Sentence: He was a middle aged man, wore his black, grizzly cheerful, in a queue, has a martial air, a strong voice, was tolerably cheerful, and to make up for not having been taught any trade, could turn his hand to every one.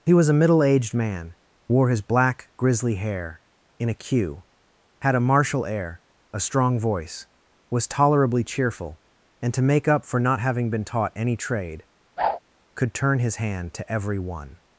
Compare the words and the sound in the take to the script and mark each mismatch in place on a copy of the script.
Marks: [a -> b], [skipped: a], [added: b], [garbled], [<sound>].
He was a middle aged man, wore his black, grizzly [cheerful, -> hair] in a queue, [has -> had] a martial air, a strong voice, was tolerably cheerful, and to make up for not having been taught any trade, [whoosh] could turn his hand to every one.